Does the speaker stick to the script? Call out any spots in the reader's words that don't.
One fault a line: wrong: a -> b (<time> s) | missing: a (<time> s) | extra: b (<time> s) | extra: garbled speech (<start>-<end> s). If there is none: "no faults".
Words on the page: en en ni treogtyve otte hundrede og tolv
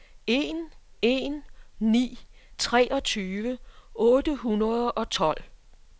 no faults